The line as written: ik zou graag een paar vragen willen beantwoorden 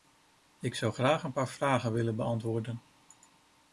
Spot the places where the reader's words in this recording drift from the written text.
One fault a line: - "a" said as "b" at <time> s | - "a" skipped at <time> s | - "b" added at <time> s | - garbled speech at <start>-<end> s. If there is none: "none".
none